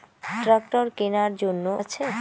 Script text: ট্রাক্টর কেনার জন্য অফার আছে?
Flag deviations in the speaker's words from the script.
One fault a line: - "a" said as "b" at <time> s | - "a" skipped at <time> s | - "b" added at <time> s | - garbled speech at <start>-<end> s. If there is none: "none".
- "অফার" skipped at 1.6 s